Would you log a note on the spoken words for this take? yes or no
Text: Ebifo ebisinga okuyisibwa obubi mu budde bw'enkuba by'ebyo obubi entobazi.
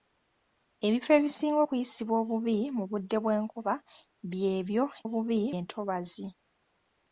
no